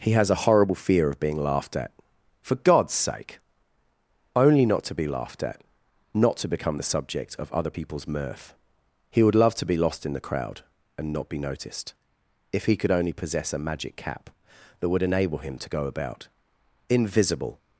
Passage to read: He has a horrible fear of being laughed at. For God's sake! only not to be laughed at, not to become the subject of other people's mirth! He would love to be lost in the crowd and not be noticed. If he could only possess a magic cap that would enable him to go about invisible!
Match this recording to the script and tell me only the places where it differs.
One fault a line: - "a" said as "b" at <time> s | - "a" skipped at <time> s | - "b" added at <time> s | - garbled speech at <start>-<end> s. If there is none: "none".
none